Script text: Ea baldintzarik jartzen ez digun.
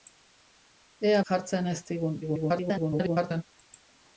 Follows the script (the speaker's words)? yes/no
no